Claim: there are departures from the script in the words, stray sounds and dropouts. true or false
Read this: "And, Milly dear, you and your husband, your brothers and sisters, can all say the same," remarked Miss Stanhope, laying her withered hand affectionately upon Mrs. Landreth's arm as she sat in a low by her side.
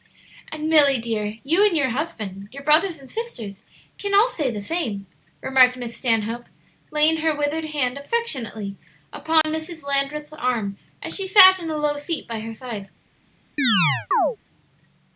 true